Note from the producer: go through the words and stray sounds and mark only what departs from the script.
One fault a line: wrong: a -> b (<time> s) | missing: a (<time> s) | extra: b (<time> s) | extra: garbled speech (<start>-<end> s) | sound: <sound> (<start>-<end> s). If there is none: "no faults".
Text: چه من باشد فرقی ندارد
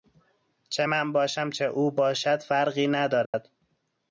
extra: باشم چه او (1.1 s)
sound: dropout (3.3-3.3 s)